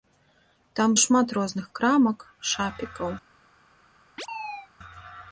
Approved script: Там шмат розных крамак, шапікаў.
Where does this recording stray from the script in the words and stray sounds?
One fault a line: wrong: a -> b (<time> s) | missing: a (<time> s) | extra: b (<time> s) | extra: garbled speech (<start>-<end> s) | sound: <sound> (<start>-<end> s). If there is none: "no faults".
sound: chirp (4.2-4.7 s)